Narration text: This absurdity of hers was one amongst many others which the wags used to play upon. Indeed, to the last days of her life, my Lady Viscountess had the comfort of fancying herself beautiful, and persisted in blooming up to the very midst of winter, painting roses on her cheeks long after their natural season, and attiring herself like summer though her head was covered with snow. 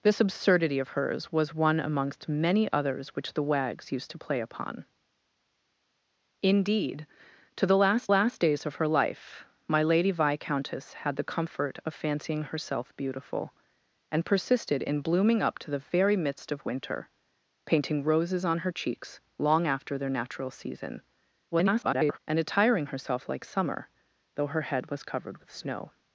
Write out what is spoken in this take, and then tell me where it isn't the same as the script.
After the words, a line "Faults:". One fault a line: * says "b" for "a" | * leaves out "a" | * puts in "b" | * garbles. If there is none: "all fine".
This absurdity of hers was one amongst many others which the wags used to play upon. Indeed, to the last last days of her life, my Lady Viscountess had the comfort of fancying herself beautiful, and persisted in blooming up to the very midst of winter, painting roses on her cheeks long after their natural season, [garbled] and attiring herself like summer though her head was covered with snow.
Faults:
* puts in "last"
* garbles